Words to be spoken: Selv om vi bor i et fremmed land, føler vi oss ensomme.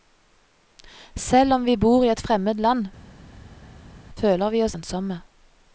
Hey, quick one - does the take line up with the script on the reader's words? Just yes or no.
yes